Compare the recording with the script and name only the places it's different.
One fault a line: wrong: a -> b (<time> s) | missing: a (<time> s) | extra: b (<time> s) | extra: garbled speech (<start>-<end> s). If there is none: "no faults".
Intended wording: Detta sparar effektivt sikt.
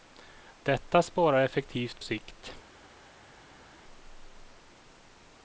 no faults